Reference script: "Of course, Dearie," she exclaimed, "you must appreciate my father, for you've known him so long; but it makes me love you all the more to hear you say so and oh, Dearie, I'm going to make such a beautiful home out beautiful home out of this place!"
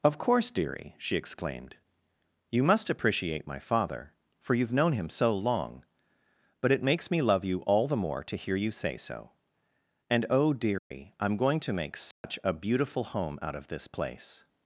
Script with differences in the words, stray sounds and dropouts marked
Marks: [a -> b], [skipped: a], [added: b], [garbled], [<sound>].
"Of course, Dearie," she exclaimed, "you must appreciate my father, for you've known him so long; but it makes me love you all the more to hear you say so and oh, Dearie, [dropout] I'm going to make such [dropout] a beautiful home out [skipped: beautiful home out] of this place!"